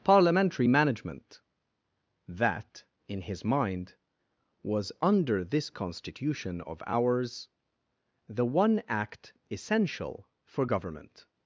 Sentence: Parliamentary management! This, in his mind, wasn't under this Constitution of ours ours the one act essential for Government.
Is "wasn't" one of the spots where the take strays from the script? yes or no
yes